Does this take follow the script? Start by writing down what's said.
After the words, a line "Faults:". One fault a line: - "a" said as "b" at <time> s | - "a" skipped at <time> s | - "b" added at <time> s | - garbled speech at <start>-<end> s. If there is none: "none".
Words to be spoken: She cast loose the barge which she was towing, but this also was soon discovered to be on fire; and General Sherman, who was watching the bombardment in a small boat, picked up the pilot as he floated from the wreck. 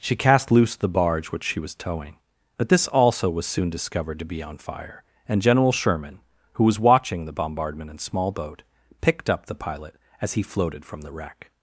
She cast loose the barge which she was towing, but this also was soon discovered to be on fire; and General Sherman, who was watching the bombardment in small boat, picked up the pilot as he floated from the wreck.
Faults:
- "a" skipped at 8.0 s